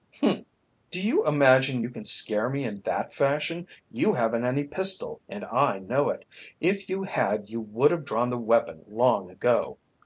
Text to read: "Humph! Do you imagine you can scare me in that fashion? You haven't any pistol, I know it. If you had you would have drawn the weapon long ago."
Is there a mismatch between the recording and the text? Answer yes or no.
yes